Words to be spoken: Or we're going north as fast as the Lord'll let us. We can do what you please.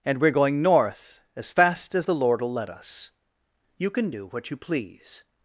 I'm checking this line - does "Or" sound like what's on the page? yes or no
no